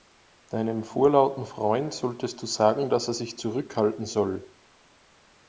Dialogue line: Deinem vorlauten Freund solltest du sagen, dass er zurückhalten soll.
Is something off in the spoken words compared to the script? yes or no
yes